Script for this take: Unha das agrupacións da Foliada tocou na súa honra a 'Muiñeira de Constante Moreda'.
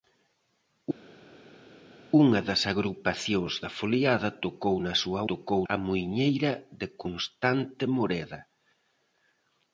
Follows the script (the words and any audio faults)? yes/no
no